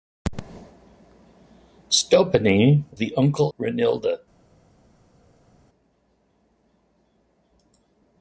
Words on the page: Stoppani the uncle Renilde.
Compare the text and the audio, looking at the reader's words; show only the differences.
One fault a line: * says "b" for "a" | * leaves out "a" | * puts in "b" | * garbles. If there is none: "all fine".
all fine